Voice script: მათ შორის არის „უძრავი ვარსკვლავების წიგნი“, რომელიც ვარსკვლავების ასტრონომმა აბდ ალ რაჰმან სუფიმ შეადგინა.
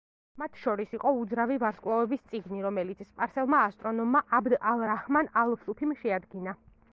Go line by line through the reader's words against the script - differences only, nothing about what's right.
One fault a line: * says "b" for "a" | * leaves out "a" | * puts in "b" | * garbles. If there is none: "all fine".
* says "იყო" for "არის"
* says "სპარსელმა" for "ვარსკვლავების"
* puts in "ალ"